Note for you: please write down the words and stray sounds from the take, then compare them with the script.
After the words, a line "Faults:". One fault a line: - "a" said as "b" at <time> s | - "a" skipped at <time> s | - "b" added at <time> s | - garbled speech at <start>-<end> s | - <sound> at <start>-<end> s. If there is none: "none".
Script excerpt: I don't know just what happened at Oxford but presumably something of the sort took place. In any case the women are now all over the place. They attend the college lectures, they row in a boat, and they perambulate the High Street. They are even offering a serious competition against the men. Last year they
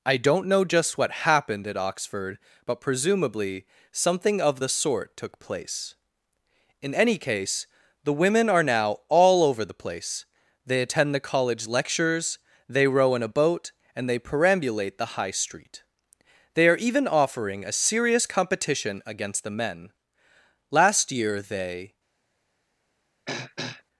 I don't know just what happened at Oxford but presumably something of the sort took place. In any case the women are now all over the place. They attend the college lectures, they row in a boat, and they perambulate the High Street. They are even offering a serious competition against the men. Last year they
Faults:
- throat clearing at 23.3-23.8 s